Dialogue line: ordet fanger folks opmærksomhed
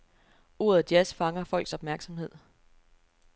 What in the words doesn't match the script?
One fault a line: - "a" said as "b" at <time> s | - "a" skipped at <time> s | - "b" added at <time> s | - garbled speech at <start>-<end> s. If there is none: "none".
- "jazz" added at 0.9 s